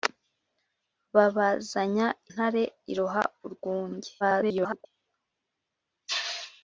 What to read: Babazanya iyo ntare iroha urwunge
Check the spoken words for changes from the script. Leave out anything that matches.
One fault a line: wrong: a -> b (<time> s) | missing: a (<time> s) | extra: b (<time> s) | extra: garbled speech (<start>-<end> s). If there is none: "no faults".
missing: iyo (2.1 s)
extra: garbled speech (4.2-4.9 s)